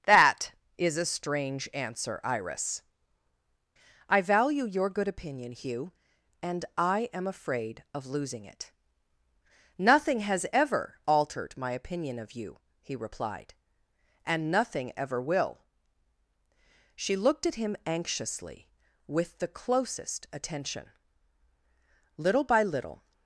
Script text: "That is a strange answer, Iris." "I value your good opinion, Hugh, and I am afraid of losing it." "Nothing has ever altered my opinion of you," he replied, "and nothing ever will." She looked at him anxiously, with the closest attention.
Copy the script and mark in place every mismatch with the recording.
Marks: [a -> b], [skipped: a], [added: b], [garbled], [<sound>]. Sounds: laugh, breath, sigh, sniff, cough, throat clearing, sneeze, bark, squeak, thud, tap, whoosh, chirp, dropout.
"That is a strange answer, Iris." "I value your good opinion, Hugh, and I am afraid of losing it." "Nothing has ever altered my opinion of you," he replied, "and nothing ever will." She looked at him anxiously, with the closest attention. [added: Little by little]